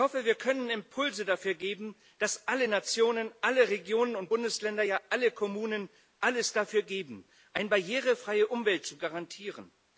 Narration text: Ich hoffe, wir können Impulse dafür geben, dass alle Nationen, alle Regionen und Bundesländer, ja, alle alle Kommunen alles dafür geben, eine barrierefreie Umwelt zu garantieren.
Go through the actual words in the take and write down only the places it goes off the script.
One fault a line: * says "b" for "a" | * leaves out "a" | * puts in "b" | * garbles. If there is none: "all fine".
* leaves out "alle"